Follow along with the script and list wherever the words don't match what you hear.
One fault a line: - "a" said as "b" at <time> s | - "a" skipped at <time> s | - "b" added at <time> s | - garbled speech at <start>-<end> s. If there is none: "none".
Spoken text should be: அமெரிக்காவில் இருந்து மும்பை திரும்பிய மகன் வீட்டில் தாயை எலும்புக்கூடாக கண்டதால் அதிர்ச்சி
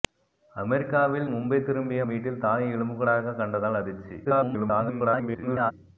- "இருந்து" skipped at 1.3 s
- "மகன்" skipped at 2.0 s
- garbled speech at 4.2-5.7 s